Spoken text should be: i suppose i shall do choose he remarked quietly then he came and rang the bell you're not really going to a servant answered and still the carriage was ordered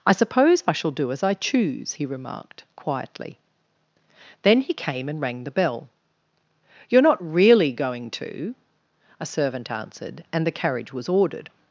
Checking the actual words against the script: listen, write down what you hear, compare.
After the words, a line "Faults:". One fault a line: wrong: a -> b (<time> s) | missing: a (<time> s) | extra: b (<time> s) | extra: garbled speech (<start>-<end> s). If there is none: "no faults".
i suppose i shall do as i choose he remarked quietly then he came and rang the bell you're not really going to a servant answered and the carriage was ordered
Faults:
extra: as i (1.1 s)
missing: still (10.5 s)